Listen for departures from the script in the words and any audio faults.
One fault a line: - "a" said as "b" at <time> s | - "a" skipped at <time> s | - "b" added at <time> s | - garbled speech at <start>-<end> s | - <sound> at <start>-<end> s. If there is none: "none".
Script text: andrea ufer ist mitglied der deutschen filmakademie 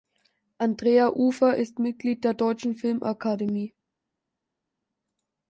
none